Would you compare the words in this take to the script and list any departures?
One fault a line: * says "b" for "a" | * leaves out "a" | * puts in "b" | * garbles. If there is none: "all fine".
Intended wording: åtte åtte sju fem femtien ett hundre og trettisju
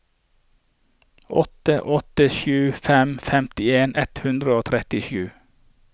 all fine